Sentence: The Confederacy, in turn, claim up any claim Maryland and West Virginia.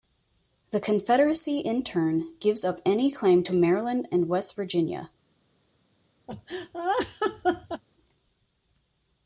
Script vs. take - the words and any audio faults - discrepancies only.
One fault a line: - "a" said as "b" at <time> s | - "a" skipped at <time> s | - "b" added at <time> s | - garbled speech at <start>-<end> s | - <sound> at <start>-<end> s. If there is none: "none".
- "claim" said as "gives" at 2.4 s
- "to" added at 3.4 s
- laugh at 6.3-7.8 s